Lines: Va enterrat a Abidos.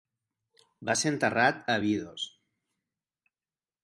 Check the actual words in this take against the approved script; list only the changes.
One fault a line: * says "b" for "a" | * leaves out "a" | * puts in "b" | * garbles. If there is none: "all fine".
* puts in "ser"